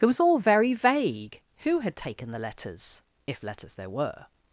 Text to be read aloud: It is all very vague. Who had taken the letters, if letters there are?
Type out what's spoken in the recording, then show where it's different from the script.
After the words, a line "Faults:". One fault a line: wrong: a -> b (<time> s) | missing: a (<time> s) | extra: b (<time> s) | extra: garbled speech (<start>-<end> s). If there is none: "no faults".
It was all very vague. Who had taken the letters, if letters there were?
Faults:
wrong: is -> was (0.1 s)
wrong: are -> were (3.9 s)